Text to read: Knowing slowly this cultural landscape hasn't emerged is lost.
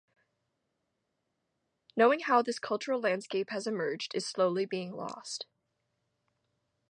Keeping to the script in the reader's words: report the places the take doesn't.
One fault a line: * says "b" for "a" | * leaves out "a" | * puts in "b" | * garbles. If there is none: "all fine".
* says "how" for "slowly"
* says "has" for "hasn't"
* puts in "slowly being"